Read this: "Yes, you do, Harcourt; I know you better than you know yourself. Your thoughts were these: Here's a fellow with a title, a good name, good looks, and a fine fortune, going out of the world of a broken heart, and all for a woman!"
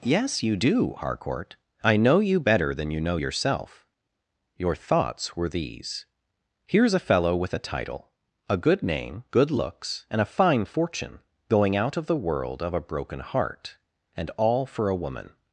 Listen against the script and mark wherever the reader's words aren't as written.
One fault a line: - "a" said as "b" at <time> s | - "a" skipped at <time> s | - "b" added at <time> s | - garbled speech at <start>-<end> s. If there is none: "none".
none